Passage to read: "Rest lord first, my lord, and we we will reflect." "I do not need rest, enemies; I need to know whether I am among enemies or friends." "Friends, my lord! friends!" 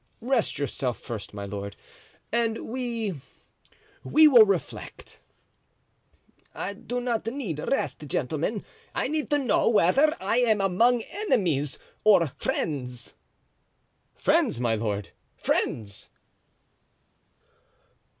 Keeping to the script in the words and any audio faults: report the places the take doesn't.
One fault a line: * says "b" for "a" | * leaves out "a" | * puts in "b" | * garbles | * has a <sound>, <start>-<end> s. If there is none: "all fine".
* says "yourself" for "lord"
* says "gentlemen" for "enemies"